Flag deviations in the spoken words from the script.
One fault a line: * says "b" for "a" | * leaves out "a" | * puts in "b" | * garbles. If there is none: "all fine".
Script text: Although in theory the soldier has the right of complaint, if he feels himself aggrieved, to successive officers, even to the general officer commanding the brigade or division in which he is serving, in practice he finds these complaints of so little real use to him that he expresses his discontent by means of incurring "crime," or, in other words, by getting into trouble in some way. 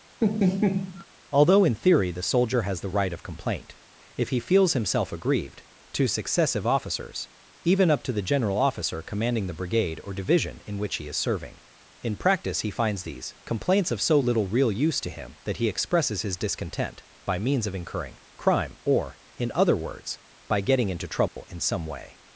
* puts in "up"